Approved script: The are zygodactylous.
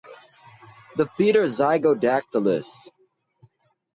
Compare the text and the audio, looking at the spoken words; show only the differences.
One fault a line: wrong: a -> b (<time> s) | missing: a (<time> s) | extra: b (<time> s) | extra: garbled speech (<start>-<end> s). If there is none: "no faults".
extra: feet (1.1 s)